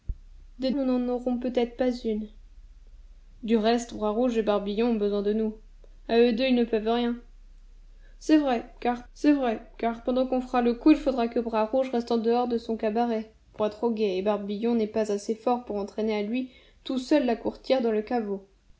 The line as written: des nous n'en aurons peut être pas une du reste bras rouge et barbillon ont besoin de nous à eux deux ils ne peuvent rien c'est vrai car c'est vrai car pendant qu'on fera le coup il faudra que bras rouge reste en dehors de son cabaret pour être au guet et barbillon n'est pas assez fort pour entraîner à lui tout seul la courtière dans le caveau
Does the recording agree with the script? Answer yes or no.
yes